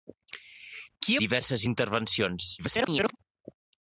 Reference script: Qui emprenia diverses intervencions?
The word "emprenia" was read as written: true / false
false